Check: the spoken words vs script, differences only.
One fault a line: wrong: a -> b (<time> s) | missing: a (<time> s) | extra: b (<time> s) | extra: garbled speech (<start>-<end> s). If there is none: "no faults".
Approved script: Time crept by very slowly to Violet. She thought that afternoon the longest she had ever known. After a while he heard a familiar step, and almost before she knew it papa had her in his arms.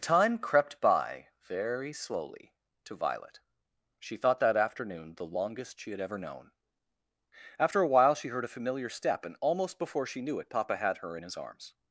wrong: he -> she (8.2 s)